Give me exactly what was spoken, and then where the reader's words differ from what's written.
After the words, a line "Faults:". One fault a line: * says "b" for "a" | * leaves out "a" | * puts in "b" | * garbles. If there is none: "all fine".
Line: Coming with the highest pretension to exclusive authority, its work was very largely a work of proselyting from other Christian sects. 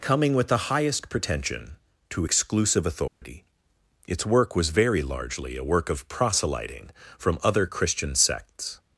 Coming with the highest pretension to exclusive authority, its work was very largely a work of proselyting from other Christian sects.
Faults:
all fine